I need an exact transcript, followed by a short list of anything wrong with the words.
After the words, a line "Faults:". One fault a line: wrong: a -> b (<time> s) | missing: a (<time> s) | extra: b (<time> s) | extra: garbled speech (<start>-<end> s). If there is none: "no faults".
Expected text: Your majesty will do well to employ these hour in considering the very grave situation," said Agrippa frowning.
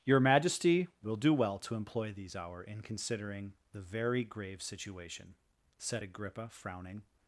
Your majesty will do well to employ these hour in considering the very grave situation," said Agrippa frowning.
Faults:
no faults